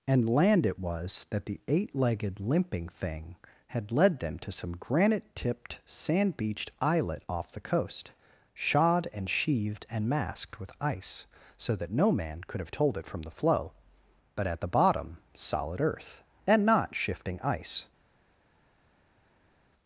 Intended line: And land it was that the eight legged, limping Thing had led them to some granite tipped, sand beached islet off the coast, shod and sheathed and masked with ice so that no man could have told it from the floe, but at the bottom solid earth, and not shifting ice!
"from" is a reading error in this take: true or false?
false